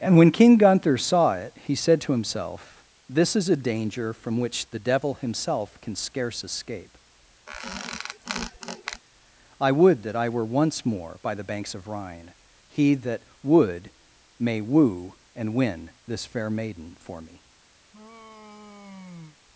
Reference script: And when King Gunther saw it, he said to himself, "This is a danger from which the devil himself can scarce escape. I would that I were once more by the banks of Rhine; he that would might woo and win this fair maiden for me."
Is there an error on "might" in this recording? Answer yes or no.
yes